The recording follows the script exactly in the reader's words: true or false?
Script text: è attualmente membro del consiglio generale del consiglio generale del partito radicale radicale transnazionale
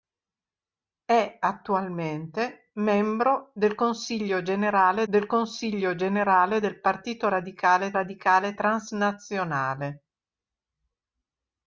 true